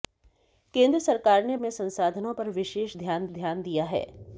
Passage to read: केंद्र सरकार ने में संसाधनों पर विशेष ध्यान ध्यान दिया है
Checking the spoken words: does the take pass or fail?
pass